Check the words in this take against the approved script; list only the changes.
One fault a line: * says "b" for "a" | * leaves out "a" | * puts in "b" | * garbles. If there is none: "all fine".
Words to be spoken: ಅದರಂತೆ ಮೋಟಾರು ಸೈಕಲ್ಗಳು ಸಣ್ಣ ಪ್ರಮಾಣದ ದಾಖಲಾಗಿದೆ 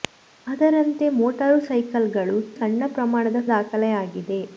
all fine